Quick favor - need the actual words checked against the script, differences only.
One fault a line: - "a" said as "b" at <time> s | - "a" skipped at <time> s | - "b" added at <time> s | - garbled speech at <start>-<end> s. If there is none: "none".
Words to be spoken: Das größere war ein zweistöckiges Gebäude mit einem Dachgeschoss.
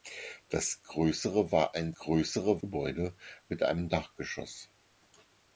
- "zweistöckiges" said as "größere" at 1.9 s